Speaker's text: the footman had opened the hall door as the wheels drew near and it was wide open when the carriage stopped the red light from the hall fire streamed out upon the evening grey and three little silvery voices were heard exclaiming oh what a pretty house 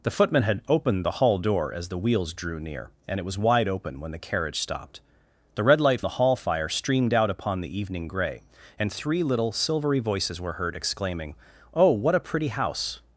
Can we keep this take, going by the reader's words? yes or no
no